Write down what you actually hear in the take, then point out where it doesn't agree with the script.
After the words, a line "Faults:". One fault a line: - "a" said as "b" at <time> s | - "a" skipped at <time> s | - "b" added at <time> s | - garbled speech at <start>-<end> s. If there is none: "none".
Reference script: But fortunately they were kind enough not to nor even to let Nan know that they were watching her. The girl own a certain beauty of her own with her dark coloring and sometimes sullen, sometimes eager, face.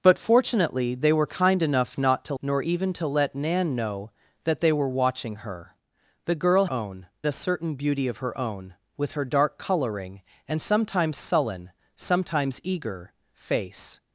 But fortunately they were kind enough not to nor even to let Nan know that they were watching her. The girl own a certain beauty of her own with her dark coloring and sometimes sullen, sometimes eager, face.
Faults:
none